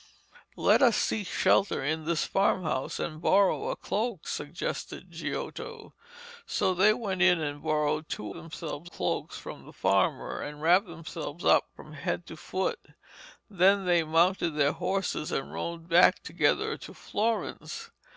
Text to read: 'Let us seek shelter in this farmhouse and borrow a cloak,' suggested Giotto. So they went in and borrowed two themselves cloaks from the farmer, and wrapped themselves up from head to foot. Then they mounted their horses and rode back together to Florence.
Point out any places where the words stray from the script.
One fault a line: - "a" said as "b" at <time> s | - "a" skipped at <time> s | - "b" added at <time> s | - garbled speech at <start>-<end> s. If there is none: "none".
none